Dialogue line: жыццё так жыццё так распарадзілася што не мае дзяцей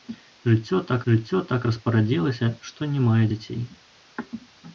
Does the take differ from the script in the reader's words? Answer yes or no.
no